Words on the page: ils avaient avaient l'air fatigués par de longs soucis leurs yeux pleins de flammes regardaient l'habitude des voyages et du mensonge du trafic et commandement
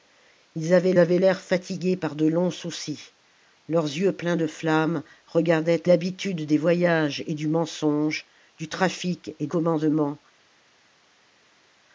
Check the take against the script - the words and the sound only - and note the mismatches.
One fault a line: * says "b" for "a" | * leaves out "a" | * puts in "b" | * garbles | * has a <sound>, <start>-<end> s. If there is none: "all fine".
all fine